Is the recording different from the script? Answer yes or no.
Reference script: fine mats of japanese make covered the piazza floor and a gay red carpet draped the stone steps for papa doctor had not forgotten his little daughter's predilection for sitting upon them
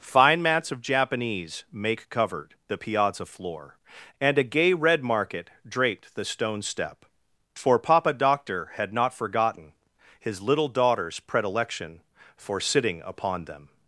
yes